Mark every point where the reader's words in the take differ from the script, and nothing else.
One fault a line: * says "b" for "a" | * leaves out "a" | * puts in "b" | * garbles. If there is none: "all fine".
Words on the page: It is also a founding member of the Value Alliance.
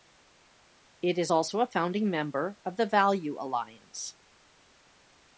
all fine